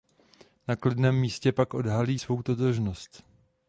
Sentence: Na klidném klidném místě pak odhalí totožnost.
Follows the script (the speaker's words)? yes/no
no